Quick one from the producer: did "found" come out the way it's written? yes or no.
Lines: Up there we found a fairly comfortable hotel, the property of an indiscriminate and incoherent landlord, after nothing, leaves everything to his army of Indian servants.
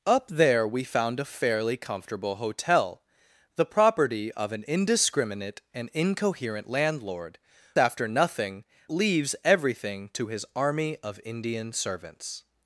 yes